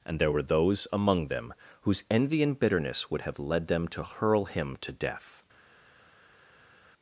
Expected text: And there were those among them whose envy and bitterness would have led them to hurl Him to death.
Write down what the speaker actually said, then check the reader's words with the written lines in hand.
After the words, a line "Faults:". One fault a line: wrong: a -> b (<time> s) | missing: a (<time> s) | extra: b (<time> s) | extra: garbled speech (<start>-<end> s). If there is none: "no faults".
And there were those among them whose envy and bitterness would have led them to hurl Him to death.
Faults:
no faults